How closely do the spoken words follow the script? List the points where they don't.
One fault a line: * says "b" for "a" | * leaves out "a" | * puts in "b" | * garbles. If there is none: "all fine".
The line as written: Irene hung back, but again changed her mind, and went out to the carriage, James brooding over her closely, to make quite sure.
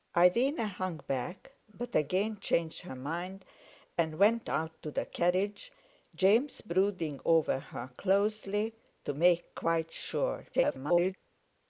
* garbles